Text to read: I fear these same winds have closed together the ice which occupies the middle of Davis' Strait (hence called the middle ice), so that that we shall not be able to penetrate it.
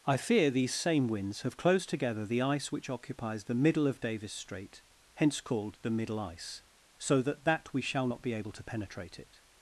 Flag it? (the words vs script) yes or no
no